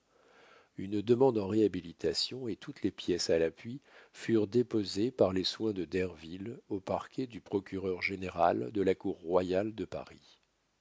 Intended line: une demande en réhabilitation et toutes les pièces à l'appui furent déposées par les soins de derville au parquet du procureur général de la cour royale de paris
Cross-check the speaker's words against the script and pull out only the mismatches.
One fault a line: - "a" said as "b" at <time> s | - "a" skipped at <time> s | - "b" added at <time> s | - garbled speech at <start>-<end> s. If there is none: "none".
none